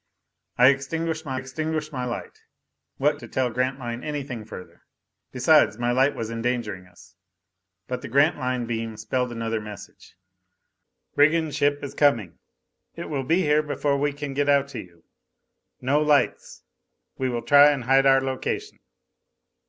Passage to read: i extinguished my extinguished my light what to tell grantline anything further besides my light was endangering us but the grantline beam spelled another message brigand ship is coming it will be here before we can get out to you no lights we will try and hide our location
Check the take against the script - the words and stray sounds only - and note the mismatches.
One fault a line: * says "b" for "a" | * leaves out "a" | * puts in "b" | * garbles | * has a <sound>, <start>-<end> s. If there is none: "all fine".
all fine